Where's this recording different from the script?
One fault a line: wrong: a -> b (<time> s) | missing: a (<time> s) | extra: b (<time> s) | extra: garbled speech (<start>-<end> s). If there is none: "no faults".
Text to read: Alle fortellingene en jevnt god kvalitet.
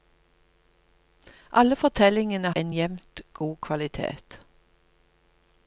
no faults